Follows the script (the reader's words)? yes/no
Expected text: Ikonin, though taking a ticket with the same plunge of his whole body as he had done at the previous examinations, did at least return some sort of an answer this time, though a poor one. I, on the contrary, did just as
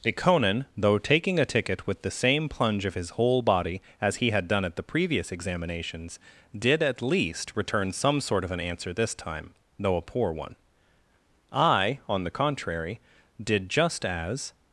yes